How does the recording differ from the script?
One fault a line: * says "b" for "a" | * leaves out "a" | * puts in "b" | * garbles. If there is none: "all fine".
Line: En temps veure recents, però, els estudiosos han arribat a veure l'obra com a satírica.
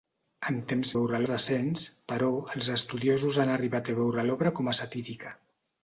all fine